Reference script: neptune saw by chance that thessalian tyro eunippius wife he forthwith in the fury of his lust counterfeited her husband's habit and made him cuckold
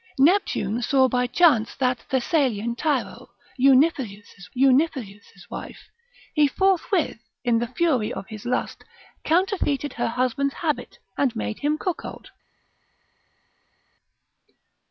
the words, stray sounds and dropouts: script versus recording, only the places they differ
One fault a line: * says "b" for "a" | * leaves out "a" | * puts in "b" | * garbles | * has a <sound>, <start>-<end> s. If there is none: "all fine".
* puts in "eunippius"